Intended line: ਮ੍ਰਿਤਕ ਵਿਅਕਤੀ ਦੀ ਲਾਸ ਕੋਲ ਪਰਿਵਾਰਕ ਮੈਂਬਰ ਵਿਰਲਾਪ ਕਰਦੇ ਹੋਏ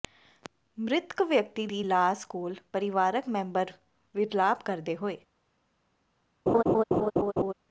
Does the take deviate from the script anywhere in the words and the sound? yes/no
yes